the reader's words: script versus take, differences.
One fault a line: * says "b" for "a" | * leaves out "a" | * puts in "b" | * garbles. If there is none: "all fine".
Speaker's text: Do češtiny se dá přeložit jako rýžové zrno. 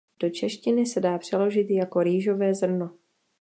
all fine